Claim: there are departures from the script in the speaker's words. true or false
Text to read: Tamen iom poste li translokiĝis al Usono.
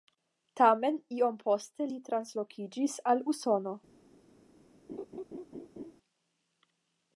false